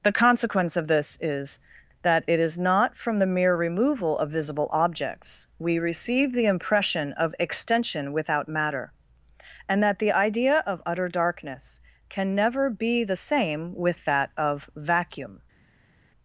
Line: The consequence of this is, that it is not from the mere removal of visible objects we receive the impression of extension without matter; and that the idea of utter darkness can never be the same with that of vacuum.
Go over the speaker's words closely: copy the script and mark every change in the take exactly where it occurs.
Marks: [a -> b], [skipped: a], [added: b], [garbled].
The consequence of this is, that it is not from the mere removal of visible objects we receive the impression of extension without matter; and that the idea of utter darkness can never be the same with that of vacuum.